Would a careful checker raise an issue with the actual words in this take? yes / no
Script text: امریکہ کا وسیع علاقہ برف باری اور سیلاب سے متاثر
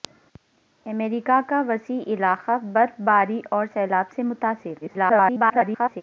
yes